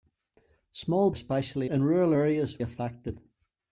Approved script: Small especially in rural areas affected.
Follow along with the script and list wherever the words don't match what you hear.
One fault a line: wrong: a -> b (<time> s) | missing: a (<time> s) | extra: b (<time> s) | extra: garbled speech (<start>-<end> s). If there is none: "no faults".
no faults